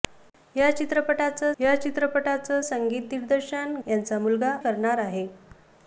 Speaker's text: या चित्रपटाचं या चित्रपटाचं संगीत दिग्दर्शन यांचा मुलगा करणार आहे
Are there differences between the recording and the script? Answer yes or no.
no